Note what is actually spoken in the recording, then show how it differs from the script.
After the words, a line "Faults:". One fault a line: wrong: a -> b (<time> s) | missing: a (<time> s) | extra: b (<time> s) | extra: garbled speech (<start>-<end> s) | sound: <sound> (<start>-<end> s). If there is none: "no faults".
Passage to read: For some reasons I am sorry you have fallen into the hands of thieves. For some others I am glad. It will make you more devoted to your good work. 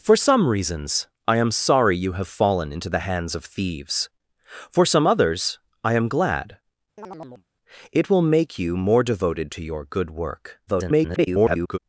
For some reasons I am sorry you have fallen into the hands of thieves. For some others I am glad. It will make you more devoted to your good work. [garbled]
Faults:
sound: chirp (7.0-7.5 s)
extra: garbled speech (10.7-11.8 s)